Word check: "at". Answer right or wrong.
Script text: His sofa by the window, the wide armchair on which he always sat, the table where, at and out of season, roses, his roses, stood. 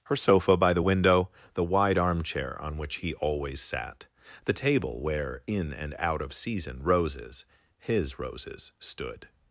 wrong